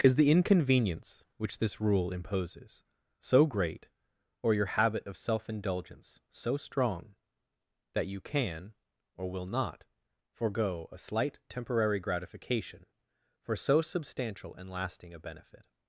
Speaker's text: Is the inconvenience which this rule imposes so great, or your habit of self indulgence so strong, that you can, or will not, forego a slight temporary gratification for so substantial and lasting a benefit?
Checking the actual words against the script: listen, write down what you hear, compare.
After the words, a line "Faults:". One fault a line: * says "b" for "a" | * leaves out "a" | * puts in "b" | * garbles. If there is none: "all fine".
Is the inconvenience which this rule imposes so great, or your habit of self indulgence so strong, that you can, or will not, forego a slight temporary gratification for so substantial and lasting a benefit?
Faults:
all fine